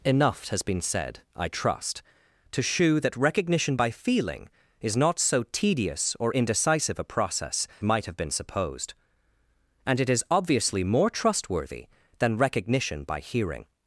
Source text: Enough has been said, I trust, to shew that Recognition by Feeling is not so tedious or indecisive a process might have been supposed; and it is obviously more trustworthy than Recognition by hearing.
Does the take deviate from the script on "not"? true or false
false